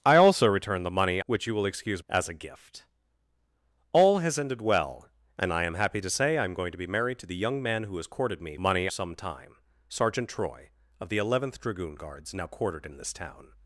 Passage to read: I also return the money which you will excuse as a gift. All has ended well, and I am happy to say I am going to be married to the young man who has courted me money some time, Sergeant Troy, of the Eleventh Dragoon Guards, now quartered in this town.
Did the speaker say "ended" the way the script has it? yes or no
yes